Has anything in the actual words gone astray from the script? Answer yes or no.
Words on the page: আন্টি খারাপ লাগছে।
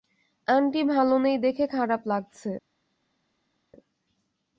yes